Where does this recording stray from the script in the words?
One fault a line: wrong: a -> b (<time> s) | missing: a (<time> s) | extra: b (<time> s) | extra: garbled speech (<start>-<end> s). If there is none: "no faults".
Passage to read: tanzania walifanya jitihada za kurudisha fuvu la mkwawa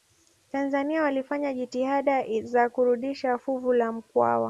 no faults